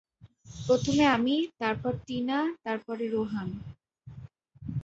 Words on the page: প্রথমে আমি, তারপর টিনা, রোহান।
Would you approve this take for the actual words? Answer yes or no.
no